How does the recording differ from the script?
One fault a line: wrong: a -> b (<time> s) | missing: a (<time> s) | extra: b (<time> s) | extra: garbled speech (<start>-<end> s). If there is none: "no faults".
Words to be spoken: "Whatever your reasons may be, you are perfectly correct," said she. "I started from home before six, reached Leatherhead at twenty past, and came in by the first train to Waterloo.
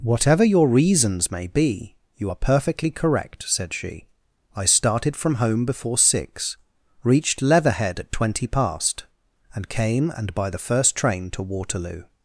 wrong: in -> and (10.1 s)